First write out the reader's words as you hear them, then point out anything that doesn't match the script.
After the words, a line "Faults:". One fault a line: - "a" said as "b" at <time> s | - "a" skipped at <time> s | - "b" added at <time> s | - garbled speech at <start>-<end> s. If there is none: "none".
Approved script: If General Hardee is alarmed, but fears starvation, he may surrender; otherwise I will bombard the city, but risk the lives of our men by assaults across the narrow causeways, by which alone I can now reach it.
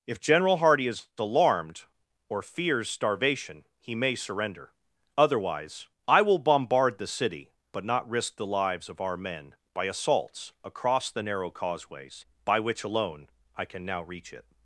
If General Hardee is alarmed, or fears starvation, he may surrender; otherwise I will bombard the city, but not risk the lives of our men by assaults across the narrow causeways, by which alone I can now reach it.
Faults:
- "but" said as "or" at 2.3 s
- "not" added at 7.8 s